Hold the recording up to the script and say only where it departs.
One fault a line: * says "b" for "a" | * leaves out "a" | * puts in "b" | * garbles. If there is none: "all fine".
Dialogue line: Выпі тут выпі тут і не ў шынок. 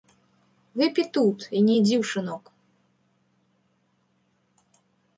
* leaves out "выпі тут"
* puts in "ідзі"